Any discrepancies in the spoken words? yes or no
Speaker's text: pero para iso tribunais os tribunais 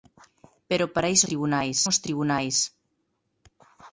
no